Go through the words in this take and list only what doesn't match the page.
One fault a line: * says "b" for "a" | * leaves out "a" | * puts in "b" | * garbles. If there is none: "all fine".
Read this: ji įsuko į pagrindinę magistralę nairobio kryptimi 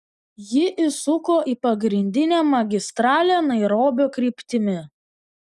all fine